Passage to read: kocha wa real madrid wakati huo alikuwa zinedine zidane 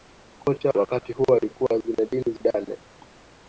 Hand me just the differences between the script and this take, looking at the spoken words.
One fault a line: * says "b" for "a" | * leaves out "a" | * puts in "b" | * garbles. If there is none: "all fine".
* leaves out "wa real madrid"